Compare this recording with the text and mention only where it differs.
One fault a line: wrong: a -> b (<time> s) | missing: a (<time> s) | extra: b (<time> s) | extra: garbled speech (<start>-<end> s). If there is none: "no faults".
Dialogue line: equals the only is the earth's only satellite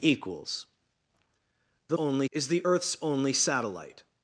no faults